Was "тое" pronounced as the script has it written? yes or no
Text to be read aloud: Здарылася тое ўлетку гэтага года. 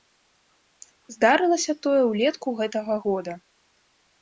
yes